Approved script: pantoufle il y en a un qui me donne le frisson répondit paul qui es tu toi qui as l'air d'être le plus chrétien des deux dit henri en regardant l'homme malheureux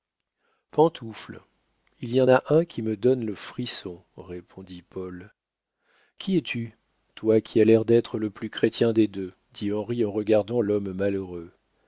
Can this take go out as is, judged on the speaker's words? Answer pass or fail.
pass